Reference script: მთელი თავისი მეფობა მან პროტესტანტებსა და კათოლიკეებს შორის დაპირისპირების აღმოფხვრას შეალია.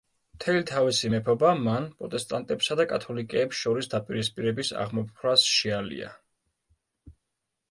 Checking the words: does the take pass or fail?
pass